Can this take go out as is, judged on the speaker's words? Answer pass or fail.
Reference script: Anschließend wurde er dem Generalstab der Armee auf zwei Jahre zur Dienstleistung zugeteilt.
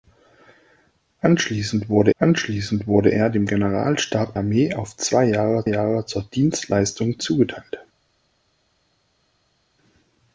fail